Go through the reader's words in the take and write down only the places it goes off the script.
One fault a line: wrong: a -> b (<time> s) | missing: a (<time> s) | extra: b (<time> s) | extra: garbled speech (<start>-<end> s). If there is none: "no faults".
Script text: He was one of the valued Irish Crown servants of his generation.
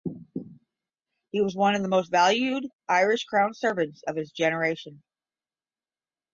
extra: most (1.9 s)